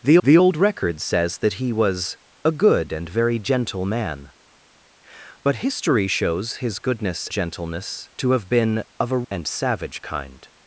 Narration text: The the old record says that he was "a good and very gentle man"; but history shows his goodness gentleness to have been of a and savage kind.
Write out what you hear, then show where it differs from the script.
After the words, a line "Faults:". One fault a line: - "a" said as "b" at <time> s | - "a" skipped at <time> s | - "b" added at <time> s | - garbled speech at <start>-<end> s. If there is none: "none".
The the old record says that he was "a good and very gentle man"; but history shows his goodness gentleness to have been of a and savage kind.
Faults:
none